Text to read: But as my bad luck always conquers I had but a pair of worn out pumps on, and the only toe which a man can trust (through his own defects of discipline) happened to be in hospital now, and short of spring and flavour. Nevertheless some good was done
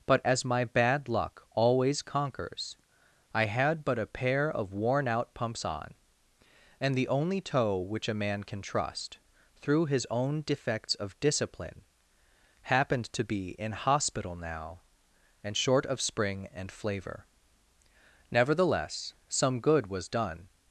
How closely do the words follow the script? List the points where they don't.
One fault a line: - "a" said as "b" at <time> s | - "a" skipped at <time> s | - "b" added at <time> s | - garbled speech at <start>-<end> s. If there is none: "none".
none